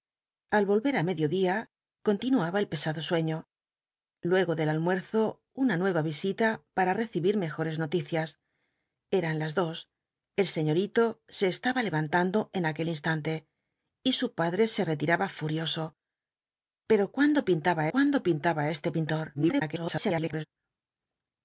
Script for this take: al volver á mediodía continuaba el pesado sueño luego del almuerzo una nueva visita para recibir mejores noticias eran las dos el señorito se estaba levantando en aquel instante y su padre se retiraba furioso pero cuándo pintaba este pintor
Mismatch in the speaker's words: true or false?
true